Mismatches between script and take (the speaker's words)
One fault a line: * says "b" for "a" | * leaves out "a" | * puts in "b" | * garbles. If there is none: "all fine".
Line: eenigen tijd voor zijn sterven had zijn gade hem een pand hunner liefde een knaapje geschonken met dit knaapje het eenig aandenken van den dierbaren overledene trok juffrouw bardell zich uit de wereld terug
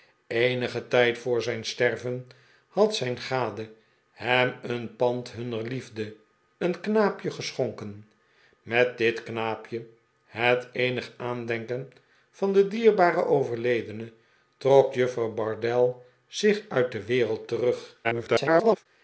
* garbles